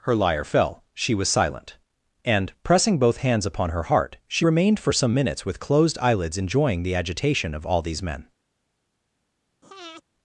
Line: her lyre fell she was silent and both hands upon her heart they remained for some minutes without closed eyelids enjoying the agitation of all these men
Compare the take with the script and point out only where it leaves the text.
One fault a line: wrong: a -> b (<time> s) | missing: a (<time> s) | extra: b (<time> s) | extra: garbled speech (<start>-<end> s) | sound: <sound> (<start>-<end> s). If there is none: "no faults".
extra: pressing (2.6 s)
wrong: they -> she (4.3 s)
wrong: without -> with (5.4 s)
sound: breath (9.6-10.0 s)